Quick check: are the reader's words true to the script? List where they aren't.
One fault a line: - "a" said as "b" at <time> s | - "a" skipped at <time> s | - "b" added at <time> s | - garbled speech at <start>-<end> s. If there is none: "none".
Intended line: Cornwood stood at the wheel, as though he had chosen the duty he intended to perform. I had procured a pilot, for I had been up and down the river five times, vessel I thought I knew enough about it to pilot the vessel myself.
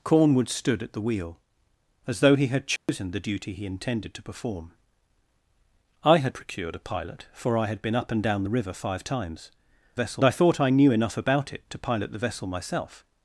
none